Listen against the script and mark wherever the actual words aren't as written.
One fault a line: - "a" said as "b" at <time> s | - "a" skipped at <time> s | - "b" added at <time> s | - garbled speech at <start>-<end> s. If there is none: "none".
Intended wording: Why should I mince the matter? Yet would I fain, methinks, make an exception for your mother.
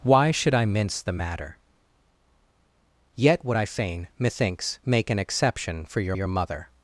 - "your" added at 6.1 s